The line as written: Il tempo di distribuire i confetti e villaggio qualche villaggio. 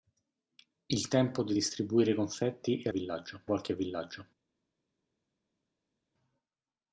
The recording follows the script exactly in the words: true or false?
true